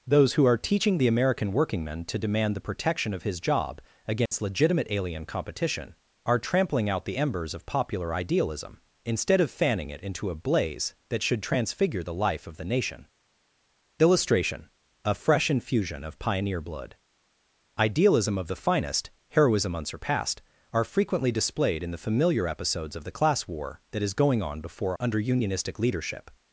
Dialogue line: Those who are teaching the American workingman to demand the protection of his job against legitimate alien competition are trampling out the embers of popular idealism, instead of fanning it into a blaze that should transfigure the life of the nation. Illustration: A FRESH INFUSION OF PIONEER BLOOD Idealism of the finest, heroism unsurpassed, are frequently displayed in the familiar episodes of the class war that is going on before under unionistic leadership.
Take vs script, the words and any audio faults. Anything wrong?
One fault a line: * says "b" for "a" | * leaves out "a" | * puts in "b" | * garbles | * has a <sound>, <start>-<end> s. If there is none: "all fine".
* has a dropout, 4.3-4.3 s